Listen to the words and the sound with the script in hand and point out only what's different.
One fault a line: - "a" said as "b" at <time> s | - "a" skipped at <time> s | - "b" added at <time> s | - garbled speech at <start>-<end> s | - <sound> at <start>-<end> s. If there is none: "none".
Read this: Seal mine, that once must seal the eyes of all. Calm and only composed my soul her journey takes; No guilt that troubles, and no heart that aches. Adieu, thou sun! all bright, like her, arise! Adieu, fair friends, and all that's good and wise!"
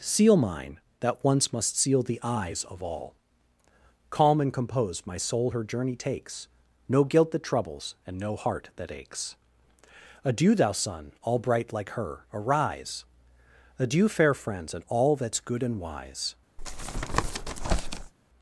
- "only" skipped at 4.5 s
- tap at 16.6-18.1 s